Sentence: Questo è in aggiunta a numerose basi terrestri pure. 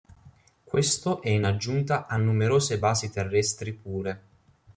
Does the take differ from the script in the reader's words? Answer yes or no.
no